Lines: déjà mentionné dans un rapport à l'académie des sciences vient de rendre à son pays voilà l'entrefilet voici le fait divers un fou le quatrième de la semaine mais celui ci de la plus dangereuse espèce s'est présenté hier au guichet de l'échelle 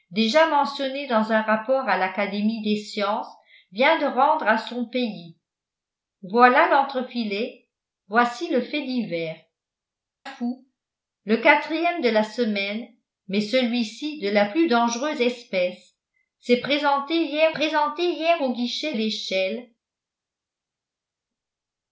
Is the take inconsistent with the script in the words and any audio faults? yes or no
yes